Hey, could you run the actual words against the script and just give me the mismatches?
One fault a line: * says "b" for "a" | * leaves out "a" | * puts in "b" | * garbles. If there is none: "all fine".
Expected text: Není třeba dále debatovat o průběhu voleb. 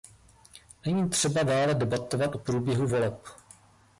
all fine